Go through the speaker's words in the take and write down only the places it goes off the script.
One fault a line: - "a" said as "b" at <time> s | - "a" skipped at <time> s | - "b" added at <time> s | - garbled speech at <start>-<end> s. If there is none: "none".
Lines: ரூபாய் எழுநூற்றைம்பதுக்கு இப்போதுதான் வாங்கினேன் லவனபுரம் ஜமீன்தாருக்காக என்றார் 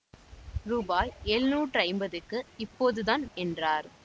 - "வாங்கினேன் லவனபுரம் ஜமீன்தாருக்காக" skipped at 3.2 s